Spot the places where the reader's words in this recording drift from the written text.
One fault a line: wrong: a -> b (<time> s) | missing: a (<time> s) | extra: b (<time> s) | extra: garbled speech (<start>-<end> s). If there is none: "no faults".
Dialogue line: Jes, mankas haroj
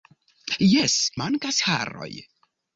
no faults